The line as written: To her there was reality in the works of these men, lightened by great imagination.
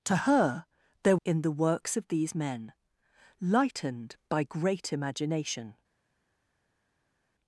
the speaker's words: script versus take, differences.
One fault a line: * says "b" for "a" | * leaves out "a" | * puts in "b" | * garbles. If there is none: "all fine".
* leaves out "was reality"